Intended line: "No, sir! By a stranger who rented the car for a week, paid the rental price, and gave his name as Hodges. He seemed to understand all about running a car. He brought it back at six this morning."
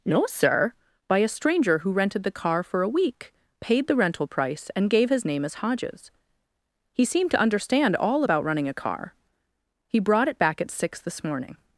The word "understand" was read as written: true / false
true